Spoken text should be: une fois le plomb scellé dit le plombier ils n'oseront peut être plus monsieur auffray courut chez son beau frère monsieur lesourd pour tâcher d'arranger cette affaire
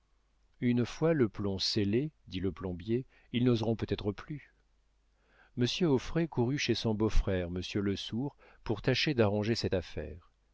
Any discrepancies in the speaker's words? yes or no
no